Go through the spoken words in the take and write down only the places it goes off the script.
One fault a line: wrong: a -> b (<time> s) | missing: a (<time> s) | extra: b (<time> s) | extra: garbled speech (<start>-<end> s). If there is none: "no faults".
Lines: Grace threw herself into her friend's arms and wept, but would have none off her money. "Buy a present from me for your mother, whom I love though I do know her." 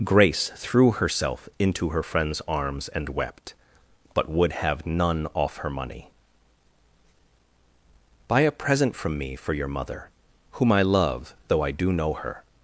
no faults